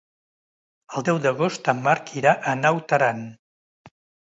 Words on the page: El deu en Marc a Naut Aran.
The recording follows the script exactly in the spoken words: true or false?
false